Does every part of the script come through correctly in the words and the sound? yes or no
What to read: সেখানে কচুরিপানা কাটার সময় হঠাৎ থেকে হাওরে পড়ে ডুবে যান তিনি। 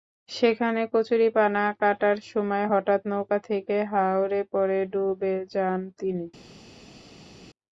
no